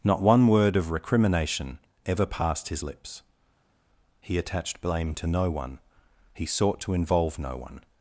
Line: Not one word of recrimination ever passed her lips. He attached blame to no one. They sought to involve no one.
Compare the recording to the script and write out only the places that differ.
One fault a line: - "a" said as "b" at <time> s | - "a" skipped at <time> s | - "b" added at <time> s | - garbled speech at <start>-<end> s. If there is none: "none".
- "her" said as "his" at 2.7 s
- "They" said as "He" at 6.3 s